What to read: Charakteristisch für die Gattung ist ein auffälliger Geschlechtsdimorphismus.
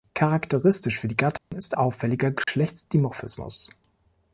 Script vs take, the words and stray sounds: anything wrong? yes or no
yes